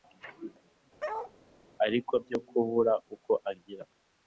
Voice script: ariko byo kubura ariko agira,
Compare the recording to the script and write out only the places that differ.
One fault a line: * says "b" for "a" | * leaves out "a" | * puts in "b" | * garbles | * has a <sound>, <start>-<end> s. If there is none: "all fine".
* has a bark, 1.0-1.3 s
* says "uko" for "ariko"